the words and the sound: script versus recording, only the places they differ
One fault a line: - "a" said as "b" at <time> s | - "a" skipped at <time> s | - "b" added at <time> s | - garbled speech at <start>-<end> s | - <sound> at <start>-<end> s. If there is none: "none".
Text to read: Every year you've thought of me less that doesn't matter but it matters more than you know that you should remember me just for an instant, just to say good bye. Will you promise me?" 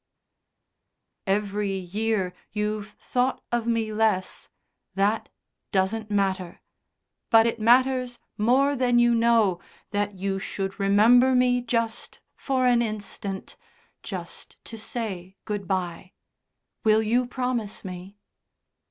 none